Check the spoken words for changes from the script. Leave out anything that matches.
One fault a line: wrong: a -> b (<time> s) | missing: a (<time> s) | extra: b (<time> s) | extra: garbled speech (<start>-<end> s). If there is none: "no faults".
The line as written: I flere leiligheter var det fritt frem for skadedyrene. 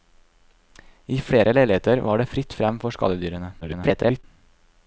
extra: garbled speech (3.6-4.2 s)